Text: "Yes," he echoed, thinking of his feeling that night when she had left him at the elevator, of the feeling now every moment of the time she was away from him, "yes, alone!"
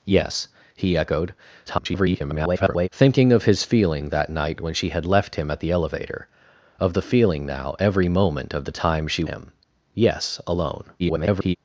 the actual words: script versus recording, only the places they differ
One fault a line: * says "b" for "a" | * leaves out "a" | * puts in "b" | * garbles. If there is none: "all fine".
* garbles
* leaves out "was away from"
* garbles